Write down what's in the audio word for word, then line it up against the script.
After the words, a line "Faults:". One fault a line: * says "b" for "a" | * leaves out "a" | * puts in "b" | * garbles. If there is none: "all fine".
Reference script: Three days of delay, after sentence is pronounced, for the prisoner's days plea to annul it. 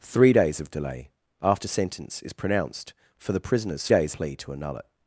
Three days of delay, after sentence is pronounced, for the prisoner's days plea to annul it.
Faults:
all fine